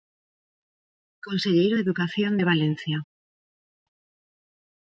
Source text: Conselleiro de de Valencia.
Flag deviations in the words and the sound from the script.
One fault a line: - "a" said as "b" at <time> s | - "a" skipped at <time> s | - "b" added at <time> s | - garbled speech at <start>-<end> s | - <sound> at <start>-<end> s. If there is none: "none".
- "educación" added at 1.8 s